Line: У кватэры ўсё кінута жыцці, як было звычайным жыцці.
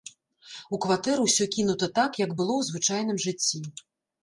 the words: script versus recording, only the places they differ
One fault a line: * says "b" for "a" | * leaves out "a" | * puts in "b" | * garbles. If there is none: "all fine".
* says "так" for "жыцці"
* puts in "ў"